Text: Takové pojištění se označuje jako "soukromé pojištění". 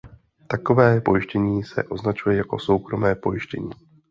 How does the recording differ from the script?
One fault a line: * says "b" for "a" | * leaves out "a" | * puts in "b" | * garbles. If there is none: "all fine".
all fine